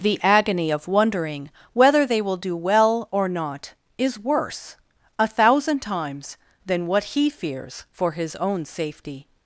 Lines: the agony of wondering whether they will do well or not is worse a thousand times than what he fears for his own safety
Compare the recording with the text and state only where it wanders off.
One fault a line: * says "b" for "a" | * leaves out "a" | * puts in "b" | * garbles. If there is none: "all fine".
all fine